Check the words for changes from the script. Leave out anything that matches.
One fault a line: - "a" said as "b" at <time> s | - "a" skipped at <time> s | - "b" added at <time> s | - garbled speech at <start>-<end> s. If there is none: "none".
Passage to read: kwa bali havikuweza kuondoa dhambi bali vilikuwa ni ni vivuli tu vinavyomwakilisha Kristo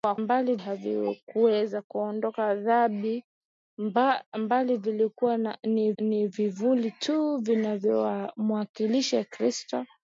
none